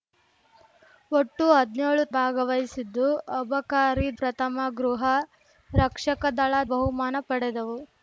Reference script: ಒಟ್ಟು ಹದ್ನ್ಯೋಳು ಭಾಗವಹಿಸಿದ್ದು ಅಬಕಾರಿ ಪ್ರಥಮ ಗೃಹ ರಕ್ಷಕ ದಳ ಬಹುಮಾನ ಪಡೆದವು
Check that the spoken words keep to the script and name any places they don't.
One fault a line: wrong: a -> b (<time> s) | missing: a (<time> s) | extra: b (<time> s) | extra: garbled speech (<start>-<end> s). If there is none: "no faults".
no faults